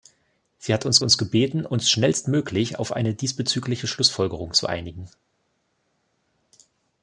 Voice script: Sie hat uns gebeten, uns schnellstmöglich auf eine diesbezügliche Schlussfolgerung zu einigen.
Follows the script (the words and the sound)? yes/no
no